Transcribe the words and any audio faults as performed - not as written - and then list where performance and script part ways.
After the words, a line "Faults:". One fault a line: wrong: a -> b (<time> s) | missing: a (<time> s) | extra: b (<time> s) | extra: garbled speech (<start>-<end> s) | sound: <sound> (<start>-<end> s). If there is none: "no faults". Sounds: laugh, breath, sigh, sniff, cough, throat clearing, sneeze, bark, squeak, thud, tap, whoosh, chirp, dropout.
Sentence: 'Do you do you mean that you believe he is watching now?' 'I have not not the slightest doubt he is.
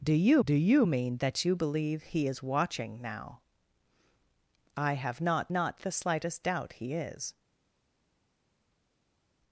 'Do you do you mean that you believe he is watching now?' 'I have not not the slightest doubt he is.
Faults:
no faults